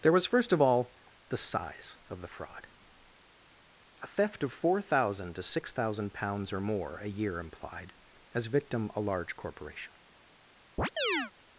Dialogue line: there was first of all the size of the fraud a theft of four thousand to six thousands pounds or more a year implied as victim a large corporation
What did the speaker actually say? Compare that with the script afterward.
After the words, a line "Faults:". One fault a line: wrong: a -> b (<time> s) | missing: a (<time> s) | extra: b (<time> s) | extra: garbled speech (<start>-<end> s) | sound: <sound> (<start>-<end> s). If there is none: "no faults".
there was first of all the size of the fraud a theft of four thousand to six thousand pounds or more a year implied as victim a large corporation
Faults:
wrong: thousands -> thousand (5.7 s)
sound: chirp (10.8-11.3 s)